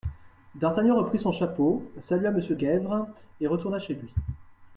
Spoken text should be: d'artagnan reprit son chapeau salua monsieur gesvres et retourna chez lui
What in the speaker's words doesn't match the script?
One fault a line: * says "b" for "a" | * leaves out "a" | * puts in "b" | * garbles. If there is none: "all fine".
all fine